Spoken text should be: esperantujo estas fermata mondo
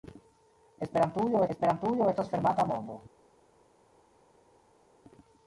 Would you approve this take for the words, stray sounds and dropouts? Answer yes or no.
no